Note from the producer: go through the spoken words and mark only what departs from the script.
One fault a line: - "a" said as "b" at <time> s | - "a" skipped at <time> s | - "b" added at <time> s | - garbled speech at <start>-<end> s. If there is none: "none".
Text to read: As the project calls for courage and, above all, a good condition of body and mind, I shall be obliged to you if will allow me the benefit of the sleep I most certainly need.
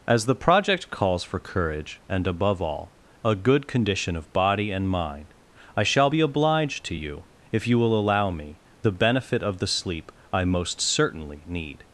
- "you" added at 7.7 s